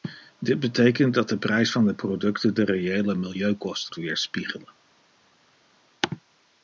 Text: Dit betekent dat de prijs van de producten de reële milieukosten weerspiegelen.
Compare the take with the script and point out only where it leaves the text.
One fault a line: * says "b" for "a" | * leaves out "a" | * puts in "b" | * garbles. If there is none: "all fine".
all fine